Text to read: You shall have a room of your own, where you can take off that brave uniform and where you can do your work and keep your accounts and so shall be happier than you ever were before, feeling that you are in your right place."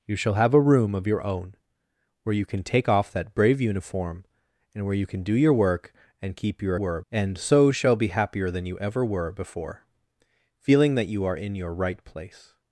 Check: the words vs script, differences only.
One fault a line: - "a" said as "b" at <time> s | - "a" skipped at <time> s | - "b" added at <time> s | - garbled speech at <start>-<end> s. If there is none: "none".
- "accounts" said as "were" at 6.7 s